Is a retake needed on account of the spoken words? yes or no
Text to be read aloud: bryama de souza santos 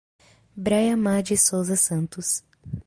no